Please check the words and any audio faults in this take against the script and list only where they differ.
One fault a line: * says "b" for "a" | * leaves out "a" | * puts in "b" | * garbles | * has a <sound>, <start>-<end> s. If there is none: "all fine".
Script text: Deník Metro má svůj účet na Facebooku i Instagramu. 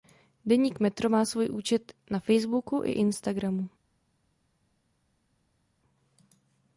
all fine